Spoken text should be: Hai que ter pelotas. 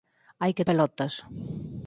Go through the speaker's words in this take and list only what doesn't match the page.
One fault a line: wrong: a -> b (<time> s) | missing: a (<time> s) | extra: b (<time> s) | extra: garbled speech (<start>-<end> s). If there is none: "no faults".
missing: ter (0.7 s)